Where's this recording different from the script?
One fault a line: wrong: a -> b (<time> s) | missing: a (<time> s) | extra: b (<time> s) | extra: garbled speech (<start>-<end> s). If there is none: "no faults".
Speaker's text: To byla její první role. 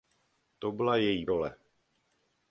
missing: první (1.2 s)